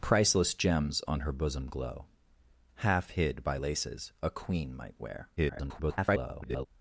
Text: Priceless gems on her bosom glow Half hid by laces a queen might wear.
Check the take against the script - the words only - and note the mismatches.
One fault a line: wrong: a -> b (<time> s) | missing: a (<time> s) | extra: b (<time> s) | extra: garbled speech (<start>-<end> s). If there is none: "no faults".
extra: garbled speech (5.4-6.7 s)